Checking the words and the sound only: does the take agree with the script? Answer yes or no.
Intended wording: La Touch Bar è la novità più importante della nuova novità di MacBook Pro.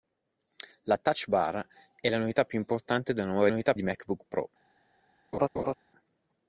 no